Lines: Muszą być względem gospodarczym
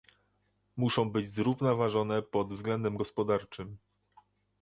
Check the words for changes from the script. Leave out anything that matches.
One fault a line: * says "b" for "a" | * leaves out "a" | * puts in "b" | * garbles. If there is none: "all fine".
* puts in "zrównoważone pod"